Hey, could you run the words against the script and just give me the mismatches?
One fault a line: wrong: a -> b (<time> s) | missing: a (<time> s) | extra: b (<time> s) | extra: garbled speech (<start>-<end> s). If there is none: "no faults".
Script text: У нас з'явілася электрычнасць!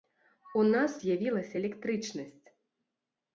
no faults